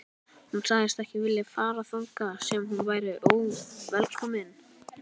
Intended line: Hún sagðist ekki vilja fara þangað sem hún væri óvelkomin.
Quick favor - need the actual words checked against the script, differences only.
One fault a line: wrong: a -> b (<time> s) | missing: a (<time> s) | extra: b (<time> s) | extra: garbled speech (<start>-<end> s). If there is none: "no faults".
no faults